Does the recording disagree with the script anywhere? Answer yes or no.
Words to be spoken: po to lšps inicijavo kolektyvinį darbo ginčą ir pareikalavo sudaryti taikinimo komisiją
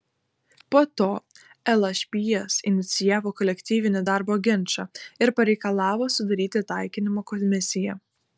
no